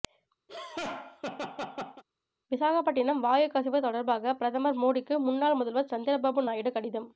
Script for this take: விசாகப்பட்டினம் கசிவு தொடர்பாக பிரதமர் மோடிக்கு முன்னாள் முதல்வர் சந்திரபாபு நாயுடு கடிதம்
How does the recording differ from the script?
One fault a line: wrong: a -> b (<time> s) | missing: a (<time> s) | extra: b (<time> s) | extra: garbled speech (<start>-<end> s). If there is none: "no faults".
extra: வாயு (3.2 s)